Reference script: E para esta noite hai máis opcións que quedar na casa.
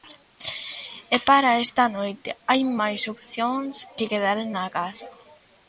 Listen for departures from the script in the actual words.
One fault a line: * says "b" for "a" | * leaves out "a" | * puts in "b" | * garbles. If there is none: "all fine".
all fine